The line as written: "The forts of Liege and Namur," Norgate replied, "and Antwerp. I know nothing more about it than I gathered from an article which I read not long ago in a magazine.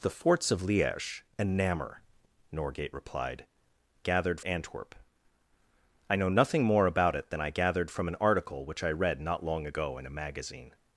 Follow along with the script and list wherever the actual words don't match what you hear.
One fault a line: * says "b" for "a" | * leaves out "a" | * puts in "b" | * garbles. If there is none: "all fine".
* says "gathered" for "and"